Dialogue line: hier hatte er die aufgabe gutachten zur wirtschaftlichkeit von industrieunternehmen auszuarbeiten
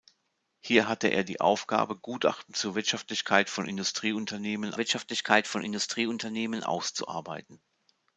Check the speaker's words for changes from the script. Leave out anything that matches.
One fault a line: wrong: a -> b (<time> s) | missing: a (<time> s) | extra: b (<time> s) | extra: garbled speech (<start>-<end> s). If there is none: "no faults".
extra: wirtschaftlichkeit von industrieunternehmen (4.8 s)